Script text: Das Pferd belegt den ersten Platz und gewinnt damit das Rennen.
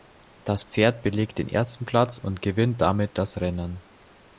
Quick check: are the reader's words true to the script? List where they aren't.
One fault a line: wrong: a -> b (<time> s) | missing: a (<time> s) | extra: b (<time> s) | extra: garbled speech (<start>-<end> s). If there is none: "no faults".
no faults